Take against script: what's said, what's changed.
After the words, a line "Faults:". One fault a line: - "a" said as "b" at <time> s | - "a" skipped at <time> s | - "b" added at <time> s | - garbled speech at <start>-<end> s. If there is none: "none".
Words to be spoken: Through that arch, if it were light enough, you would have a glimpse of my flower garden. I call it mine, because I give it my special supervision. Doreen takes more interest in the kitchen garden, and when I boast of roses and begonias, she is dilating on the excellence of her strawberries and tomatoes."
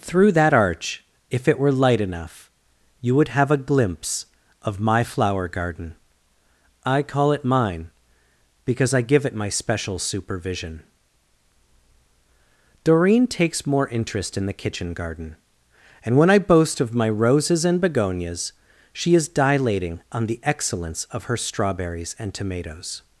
Through that arch, if it were light enough, you would have a glimpse of my flower garden. I call it mine, because I give it my special supervision. Doreen takes more interest in the kitchen garden, and when I boast of my roses and begonias, she is dilating on the excellence of her strawberries and tomatoes."
Faults:
- "my" added at 16.9 s